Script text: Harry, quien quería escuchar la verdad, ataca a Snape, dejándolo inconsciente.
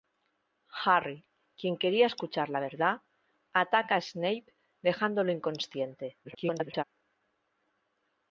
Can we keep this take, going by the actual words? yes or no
no